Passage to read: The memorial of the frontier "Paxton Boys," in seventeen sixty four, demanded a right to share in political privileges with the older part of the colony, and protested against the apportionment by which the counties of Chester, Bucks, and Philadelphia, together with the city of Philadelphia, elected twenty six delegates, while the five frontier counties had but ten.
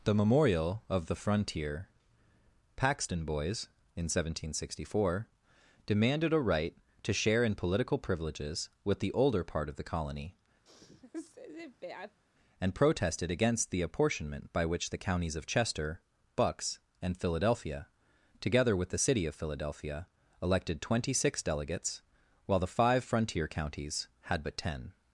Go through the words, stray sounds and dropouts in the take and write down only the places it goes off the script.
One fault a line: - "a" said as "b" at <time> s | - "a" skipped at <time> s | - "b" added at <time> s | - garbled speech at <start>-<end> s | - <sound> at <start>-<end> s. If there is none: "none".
- sneeze at 10.7-12.2 s